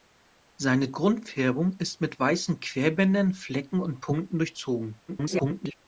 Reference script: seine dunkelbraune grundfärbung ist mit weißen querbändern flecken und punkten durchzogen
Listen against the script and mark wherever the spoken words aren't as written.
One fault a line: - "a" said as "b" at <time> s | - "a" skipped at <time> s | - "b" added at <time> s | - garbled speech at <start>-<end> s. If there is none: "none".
- "dunkelbraune" skipped at 0.9 s
- garbled speech at 5.1-5.7 s